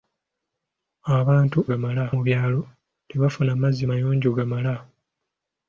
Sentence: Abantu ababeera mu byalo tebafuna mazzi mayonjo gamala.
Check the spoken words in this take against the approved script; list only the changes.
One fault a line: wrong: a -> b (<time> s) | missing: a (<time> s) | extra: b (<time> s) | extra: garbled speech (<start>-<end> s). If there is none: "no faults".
wrong: ababeera -> gamala (1.7 s)